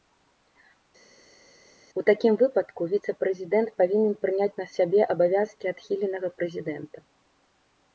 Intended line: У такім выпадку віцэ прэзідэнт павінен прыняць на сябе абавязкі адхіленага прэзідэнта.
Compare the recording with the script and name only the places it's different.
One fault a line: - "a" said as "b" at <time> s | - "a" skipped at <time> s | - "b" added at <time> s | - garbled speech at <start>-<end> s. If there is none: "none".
none